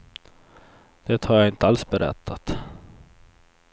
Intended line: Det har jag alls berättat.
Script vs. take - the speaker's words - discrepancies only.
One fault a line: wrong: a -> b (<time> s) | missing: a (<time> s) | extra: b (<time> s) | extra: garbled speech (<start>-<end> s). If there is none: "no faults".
extra: inte (1.5 s)